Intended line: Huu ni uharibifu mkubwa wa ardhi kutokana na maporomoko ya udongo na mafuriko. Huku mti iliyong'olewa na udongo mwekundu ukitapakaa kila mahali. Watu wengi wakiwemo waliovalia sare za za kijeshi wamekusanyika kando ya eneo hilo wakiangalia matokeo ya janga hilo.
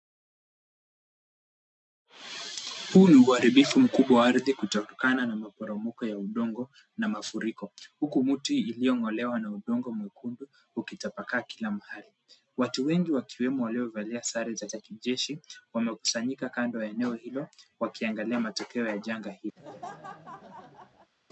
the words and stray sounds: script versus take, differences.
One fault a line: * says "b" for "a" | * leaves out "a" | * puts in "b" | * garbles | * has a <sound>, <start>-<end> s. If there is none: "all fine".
* has a laugh, 19.6-21.1 s